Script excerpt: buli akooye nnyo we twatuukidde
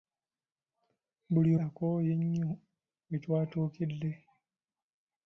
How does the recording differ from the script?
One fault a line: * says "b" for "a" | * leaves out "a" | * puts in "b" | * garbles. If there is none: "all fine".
all fine